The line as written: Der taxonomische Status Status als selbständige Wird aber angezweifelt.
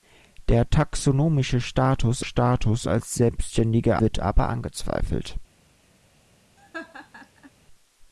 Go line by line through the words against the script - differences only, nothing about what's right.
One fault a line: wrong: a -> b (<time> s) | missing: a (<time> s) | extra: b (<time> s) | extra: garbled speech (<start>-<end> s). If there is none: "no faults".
no faults